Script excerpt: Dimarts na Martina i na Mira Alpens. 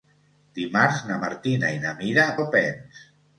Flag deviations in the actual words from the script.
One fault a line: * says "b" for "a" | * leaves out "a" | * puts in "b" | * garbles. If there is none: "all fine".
all fine